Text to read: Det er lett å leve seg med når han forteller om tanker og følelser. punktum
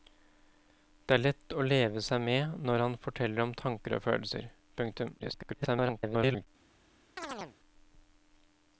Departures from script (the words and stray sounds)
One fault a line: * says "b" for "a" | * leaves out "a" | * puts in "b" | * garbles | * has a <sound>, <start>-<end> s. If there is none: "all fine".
* garbles
* has a chirp, 7.2-7.6 s